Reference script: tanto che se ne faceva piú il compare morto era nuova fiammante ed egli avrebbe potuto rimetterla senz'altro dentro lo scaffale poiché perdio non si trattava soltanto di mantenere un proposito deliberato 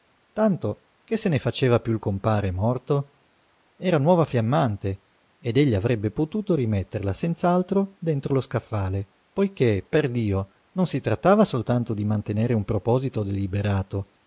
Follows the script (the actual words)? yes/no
yes